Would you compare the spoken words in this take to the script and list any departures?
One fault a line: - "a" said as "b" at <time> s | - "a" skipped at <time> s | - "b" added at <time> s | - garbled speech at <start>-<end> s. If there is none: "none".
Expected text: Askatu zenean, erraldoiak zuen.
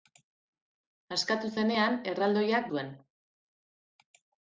none